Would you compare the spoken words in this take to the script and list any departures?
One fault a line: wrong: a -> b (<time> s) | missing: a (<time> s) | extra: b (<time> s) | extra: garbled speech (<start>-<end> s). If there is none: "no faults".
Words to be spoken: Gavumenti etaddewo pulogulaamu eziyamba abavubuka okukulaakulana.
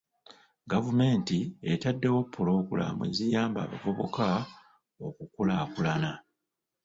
no faults